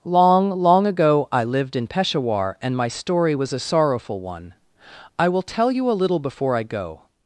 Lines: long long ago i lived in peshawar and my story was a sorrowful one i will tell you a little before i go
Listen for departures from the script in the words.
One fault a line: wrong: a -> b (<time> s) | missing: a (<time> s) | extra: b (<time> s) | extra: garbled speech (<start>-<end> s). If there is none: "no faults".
no faults